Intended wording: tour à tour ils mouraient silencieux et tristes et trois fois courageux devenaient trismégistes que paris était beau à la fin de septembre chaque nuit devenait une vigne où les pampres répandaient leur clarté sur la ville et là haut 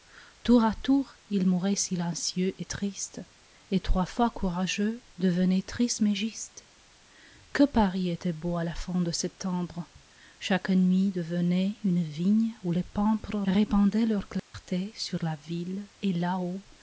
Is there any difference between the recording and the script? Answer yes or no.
no